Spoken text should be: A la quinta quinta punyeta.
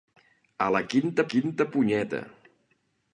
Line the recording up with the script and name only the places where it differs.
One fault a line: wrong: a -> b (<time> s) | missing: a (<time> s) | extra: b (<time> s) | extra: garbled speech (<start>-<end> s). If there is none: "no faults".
no faults